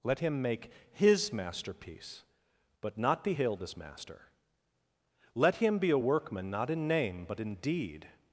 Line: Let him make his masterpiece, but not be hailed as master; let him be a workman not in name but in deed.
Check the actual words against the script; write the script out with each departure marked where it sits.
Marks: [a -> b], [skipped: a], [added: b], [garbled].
Let him make his masterpiece, but not be hailed as master; let him be a workman not in name but in deed.